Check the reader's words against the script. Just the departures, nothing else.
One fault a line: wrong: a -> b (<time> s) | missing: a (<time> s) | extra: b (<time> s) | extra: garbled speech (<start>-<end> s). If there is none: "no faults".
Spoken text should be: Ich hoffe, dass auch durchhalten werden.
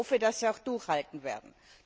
no faults